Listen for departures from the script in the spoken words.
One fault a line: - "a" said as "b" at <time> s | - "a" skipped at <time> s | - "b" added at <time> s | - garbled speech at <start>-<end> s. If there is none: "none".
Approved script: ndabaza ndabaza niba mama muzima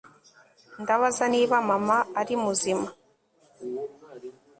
- "ndabaza" skipped at 1.2 s
- "ari" added at 2.2 s